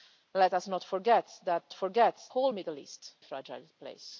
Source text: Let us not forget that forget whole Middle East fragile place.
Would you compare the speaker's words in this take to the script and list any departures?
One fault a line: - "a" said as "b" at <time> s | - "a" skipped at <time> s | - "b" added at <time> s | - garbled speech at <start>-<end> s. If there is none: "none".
none